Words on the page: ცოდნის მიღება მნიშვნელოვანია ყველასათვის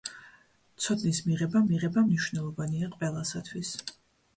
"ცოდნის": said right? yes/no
yes